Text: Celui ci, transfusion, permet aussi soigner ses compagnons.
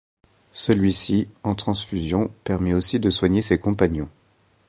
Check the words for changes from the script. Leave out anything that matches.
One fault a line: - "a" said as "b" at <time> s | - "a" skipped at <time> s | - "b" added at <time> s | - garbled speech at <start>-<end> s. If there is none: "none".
- "en" added at 1.4 s
- "de" added at 3.0 s